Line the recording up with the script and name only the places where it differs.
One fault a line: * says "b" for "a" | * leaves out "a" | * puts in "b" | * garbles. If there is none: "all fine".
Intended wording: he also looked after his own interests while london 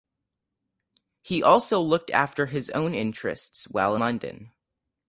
all fine